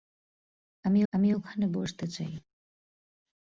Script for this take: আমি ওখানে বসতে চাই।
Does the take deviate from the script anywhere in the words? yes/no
yes